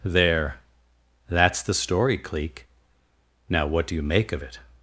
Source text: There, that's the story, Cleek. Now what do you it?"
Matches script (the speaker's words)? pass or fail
fail